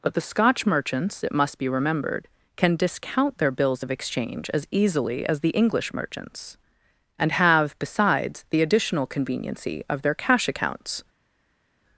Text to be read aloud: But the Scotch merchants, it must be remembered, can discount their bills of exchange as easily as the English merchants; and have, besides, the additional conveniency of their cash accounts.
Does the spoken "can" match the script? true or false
true